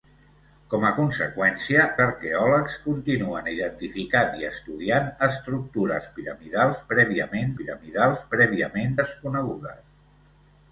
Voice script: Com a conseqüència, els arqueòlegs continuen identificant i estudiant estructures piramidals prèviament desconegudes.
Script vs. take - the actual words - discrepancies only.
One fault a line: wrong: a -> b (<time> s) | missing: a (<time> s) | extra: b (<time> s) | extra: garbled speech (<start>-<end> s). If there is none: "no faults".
missing: els (1.8 s)
extra: piramidals prèviament (7.6 s)